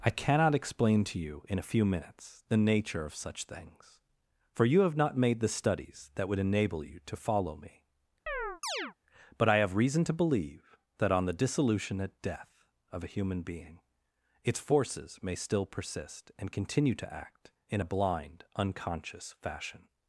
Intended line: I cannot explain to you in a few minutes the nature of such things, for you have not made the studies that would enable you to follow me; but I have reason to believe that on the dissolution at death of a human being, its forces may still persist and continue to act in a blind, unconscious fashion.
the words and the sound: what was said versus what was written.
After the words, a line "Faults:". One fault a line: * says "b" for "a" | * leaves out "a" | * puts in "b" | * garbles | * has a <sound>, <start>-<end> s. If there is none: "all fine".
I cannot explain to you in a few minutes the nature of such things, for you have not made the studies that would enable you to follow me; but I have reason to believe that on the dissolution at death of a human being, its forces may still persist and continue to act in a blind, unconscious fashion.
Faults:
* has a chirp, 8.3-8.9 s